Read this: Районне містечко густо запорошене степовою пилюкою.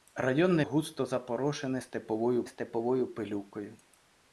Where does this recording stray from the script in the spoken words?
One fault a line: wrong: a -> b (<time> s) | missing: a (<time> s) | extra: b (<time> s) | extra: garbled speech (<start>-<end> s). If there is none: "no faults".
missing: містечко (0.7 s)
extra: степовою (2.5 s)